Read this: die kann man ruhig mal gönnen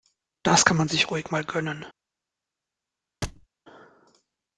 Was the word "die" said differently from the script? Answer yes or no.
yes